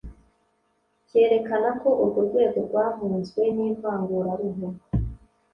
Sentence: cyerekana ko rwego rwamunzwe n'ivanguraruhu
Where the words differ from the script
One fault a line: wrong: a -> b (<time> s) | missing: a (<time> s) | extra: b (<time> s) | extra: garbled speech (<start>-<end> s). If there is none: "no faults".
extra: urwo (2.0 s)